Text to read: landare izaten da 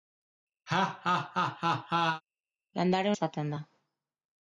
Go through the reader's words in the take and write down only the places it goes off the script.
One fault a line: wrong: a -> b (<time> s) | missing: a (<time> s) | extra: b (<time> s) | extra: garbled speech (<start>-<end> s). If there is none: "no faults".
no faults